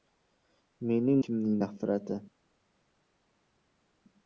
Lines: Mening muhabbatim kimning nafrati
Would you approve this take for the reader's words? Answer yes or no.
no